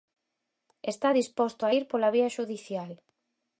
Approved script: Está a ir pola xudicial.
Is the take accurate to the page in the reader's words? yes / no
no